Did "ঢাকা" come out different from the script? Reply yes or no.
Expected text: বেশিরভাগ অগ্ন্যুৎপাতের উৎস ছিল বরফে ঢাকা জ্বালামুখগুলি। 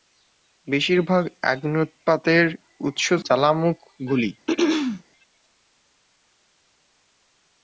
yes